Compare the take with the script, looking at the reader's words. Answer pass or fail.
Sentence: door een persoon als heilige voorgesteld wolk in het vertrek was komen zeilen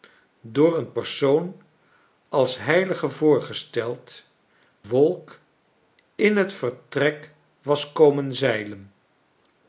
pass